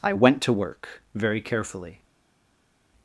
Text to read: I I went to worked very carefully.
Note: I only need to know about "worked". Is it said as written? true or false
false